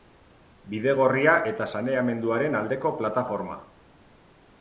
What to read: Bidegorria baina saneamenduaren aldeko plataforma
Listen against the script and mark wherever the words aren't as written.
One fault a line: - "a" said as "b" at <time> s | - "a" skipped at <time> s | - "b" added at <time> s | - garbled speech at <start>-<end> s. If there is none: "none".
- "baina" said as "eta" at 1.5 s